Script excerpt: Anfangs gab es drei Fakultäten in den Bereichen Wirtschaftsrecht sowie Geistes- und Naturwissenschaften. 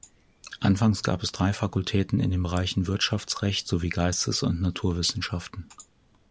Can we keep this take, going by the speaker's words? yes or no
yes